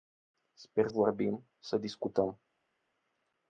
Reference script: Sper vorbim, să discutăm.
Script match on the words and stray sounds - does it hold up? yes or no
yes